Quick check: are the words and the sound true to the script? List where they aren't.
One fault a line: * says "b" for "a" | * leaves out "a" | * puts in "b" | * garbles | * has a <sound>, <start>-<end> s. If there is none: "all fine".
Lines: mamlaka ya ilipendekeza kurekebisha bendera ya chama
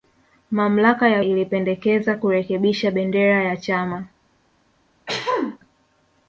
* has a throat clearing, 5.1-5.6 s